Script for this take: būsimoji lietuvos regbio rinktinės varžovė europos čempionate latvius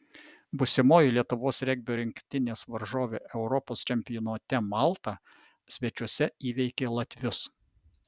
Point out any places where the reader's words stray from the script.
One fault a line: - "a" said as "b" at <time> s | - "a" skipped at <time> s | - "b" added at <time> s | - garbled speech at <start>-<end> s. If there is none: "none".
- "malta svečiuose įveikė" added at 4.7 s